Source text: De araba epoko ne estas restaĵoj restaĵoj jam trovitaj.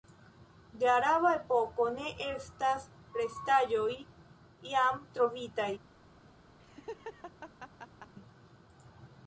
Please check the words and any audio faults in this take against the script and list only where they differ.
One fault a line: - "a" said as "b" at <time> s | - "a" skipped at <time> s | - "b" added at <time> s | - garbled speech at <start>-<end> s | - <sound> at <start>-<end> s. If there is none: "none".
- "restaĵoj" skipped at 3.9 s
- laugh at 6.6-8.1 s